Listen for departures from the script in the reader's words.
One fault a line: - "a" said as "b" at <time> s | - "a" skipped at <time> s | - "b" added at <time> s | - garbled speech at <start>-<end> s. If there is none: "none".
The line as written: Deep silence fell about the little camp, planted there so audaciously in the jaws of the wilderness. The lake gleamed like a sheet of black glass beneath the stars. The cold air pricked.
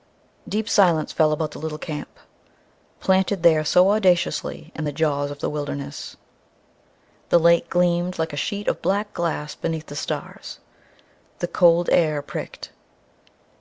none